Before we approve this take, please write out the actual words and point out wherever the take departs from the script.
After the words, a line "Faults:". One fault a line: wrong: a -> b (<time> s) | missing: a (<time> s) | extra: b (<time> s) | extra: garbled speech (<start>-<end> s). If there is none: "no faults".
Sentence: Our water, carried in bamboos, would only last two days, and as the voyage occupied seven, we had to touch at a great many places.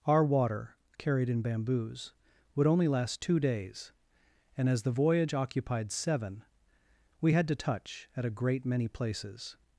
Our water, carried in bamboos, would only last two days, and as the voyage occupied seven, we had to touch at a great many places.
Faults:
no faults